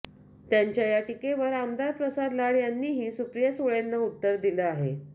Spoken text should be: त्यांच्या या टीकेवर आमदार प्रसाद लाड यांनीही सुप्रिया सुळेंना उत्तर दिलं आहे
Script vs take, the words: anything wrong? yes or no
no